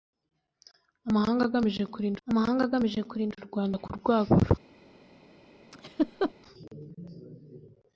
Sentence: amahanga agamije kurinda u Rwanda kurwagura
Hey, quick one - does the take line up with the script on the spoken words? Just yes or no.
no